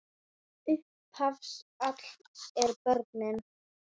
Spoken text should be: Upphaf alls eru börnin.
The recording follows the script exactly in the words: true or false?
true